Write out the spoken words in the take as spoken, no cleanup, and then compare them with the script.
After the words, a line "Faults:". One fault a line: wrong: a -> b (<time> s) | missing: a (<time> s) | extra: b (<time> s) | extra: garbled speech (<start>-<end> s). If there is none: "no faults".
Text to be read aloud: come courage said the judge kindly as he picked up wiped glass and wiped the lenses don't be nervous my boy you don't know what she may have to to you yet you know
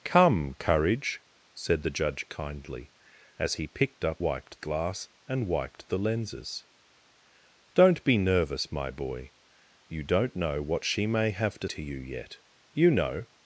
come courage said the judge kindly as he picked up wiped glass and wiped the lenses don't be nervous my boy you don't know what she may have to to you yet you know
Faults:
no faults